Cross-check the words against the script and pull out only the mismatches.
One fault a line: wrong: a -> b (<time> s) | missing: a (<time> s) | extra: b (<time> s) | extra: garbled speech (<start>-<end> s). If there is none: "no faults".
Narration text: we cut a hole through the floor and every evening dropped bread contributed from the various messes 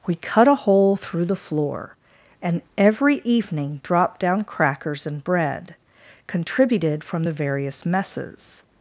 extra: down crackers and (4.2 s)